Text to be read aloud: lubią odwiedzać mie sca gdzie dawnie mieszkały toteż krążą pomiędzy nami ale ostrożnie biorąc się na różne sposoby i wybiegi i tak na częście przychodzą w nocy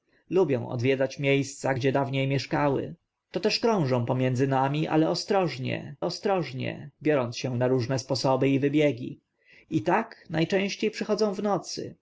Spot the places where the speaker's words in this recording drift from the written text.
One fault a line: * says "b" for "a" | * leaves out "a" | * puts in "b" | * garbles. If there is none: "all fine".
* puts in "ostrożnie"